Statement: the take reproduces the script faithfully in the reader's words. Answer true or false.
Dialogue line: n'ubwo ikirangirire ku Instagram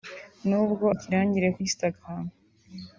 true